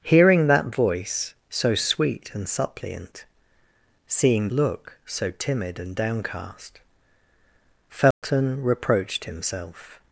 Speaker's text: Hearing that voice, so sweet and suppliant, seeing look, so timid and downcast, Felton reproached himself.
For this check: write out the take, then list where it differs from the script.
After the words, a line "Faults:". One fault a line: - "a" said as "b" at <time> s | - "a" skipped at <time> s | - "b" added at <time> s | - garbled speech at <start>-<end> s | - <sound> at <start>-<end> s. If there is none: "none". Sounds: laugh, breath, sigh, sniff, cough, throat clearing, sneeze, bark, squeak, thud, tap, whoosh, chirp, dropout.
Hearing that voice, so sweet and suppliant, seeing look, so timid and downcast, Felton reproached himself.
Faults:
- dropout at 8.1-8.2 s